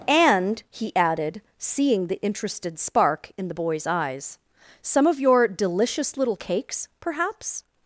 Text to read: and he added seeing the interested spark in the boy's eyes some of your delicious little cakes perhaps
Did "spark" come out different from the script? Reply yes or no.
no